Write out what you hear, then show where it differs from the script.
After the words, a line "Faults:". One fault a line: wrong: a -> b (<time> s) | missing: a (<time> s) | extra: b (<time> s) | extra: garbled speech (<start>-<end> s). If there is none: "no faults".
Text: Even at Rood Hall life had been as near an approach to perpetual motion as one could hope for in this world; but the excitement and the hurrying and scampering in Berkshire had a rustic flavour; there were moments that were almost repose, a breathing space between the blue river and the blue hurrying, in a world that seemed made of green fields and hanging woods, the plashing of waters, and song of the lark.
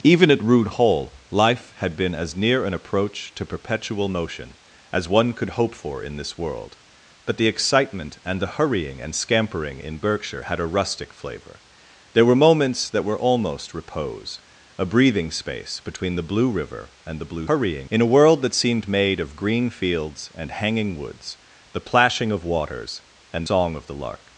Even at Rood Hall life had been as near an approach to perpetual motion as one could hope for in this world; but the excitement and the hurrying and scampering in Berkshire had a rustic flavour; there were moments that were almost repose, a breathing space between the blue river and the blue hurrying, in a world that seemed made of green fields and hanging woods, the plashing of waters, and song of the lark.
Faults:
no faults